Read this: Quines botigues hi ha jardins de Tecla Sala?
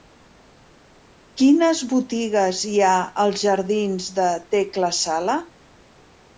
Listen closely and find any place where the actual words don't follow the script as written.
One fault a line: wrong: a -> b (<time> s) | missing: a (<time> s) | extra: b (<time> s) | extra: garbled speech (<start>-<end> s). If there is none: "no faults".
extra: als (3.3 s)